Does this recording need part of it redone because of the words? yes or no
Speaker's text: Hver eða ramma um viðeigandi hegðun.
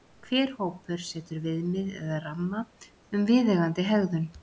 yes